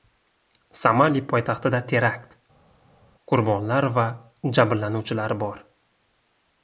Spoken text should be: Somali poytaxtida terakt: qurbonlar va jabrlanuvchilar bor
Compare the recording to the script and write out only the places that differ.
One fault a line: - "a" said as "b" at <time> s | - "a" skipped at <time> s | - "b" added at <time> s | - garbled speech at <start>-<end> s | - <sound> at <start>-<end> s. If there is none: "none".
none